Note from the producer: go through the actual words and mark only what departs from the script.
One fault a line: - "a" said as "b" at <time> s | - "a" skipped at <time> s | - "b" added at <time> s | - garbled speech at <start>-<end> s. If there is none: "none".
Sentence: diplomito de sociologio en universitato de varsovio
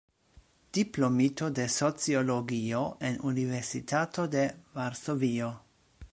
none